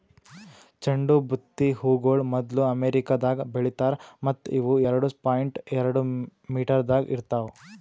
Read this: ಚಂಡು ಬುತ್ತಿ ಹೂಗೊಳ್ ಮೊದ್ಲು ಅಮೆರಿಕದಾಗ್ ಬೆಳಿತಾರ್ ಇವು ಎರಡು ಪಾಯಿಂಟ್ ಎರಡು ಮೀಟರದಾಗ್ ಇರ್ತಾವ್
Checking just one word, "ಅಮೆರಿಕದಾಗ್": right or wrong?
right